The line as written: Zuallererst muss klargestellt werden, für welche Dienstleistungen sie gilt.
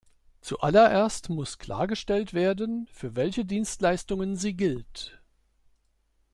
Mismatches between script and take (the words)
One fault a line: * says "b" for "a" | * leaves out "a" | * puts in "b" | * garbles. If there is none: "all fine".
all fine